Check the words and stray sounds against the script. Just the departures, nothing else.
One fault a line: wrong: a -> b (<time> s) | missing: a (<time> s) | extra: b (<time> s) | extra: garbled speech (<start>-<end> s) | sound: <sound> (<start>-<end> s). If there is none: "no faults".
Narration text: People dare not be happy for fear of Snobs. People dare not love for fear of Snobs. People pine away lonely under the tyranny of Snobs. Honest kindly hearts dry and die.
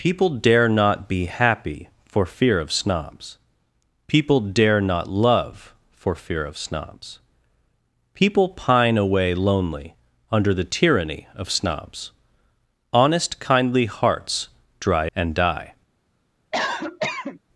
sound: cough (16.5-17.4 s)